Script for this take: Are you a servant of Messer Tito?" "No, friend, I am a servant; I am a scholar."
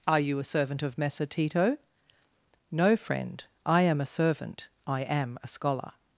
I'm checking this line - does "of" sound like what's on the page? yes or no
yes